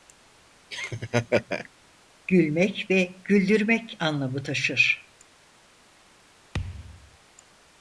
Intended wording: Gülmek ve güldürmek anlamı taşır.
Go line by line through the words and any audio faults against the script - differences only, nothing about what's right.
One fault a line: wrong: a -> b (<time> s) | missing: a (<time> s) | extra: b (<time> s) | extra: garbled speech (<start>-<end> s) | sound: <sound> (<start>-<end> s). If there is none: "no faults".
sound: laugh (0.7-1.7 s)
sound: thud (6.5-7.2 s)